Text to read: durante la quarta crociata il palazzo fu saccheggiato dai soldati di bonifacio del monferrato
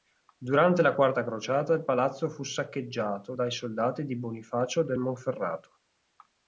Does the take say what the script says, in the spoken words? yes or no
yes